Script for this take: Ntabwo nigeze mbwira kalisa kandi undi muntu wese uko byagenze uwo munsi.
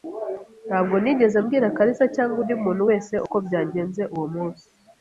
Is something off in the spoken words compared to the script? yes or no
yes